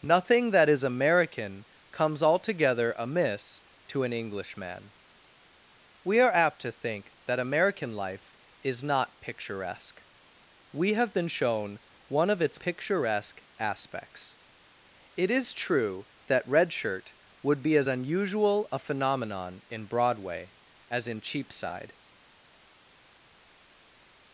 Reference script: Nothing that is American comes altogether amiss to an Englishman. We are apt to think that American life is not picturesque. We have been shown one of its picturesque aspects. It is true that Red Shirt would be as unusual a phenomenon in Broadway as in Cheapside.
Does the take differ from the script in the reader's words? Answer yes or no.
no